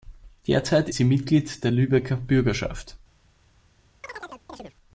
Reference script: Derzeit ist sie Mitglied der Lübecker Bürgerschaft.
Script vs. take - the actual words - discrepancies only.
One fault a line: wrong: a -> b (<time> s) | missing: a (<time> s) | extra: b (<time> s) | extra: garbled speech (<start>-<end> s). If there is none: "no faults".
missing: ist (0.9 s)